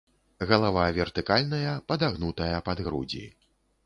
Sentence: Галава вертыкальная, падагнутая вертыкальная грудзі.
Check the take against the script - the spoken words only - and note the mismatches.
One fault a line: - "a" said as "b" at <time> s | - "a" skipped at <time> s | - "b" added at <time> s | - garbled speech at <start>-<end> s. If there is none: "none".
- "вертыкальная" said as "пад" at 2.7 s